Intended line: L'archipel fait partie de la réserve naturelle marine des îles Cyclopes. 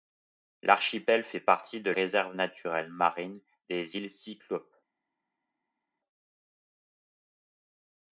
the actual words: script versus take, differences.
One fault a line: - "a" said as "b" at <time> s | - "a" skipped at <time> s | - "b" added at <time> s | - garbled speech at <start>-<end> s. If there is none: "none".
- "la" skipped at 1.9 s